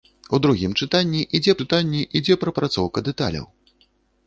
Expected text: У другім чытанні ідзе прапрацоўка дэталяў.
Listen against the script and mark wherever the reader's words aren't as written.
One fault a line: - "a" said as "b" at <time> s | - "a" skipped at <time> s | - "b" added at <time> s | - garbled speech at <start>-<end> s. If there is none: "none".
- "чытанні ідзе" added at 1.6 s